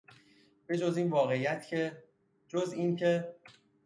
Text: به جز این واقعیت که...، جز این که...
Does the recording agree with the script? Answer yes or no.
yes